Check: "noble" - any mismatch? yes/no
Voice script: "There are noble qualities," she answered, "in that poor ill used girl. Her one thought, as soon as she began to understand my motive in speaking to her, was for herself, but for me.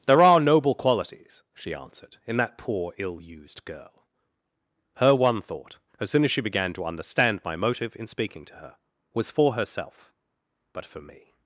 no